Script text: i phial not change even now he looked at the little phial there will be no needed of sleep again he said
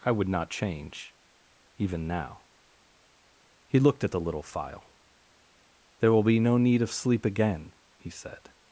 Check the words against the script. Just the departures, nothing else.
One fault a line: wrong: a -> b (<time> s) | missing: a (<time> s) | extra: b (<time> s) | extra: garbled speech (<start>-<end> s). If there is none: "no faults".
wrong: phial -> would (0.1 s)
wrong: needed -> need (6.6 s)